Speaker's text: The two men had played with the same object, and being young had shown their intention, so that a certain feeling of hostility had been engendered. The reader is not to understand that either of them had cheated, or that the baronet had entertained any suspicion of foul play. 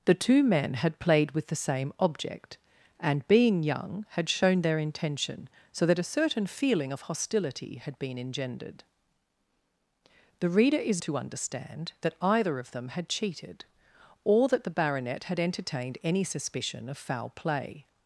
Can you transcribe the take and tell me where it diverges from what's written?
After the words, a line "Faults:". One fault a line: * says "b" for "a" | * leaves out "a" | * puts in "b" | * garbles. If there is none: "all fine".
The two men had played with the same object, and being young had shown their intention, so that a certain feeling of hostility had been engendered. The reader is to understand that either of them had cheated, or that the baronet had entertained any suspicion of foul play.
Faults:
* leaves out "not"